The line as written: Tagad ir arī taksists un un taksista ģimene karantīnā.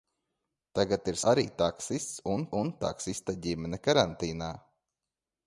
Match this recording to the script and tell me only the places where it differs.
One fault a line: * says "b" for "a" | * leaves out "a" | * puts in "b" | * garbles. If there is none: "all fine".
all fine